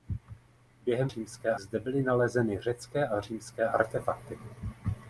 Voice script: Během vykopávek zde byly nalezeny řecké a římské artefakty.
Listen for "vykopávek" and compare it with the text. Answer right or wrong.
wrong